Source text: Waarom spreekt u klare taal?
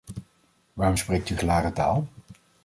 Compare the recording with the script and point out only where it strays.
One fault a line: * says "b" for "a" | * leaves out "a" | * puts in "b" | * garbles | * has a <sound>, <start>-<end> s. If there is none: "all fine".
all fine